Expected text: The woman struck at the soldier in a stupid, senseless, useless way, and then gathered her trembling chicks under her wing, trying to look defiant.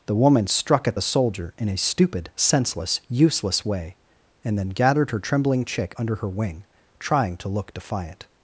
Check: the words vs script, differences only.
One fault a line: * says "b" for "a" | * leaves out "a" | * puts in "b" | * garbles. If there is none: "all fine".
* says "chick" for "chicks"